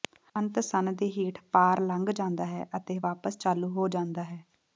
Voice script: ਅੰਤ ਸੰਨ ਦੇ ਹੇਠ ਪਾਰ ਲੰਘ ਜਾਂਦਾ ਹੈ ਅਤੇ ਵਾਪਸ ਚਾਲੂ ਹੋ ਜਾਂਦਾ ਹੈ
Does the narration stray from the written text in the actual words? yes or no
no